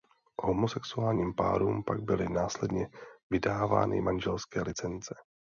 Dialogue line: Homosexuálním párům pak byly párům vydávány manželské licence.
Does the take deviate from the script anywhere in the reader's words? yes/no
yes